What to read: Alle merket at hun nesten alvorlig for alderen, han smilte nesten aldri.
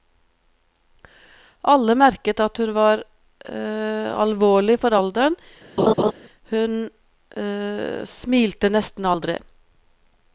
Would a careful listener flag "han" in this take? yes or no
yes